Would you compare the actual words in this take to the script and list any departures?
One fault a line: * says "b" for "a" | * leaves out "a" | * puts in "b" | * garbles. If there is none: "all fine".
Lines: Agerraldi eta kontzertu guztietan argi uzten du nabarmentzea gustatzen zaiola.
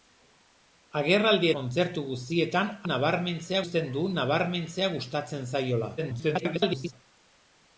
* leaves out "eta"
* says "nabarmentzea" for "argi"
* garbles